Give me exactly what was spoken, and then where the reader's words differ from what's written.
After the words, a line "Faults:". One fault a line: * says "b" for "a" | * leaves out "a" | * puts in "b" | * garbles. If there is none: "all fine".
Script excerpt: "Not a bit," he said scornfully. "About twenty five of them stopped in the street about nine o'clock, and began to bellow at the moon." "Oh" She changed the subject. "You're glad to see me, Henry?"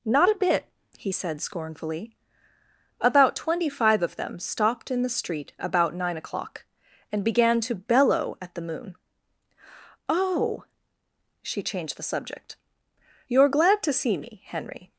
"Not a bit," he said scornfully. "About twenty five of them stopped in the street about nine o'clock, and began to bellow at the moon." "Oh" She changed the subject. "You're glad to see me, Henry?"
Faults:
all fine